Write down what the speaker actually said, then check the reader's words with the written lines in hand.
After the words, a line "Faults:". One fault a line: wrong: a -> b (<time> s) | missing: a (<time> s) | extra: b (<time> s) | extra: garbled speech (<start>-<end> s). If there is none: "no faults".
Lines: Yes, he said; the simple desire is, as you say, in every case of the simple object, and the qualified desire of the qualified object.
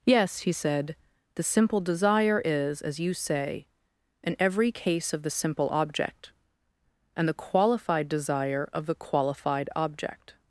Yes, he said; the simple desire is, as you say, in every case of the simple object, and the qualified desire of the qualified object.
Faults:
no faults